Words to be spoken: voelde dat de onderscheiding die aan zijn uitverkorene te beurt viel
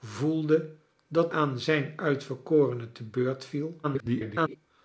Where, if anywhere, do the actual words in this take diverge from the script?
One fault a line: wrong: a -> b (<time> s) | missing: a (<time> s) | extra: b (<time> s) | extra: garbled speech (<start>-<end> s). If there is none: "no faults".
missing: de onderscheiding die (1.3 s)
extra: garbled speech (3.8-4.6 s)